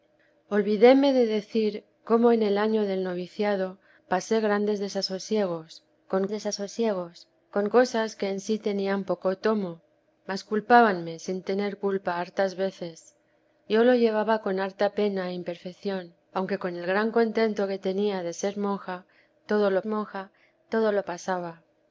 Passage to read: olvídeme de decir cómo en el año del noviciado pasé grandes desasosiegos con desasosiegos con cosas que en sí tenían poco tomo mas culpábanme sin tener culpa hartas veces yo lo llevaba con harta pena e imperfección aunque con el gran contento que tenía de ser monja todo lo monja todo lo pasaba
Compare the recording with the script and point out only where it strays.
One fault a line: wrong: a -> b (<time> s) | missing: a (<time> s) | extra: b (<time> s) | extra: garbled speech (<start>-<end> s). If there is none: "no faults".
no faults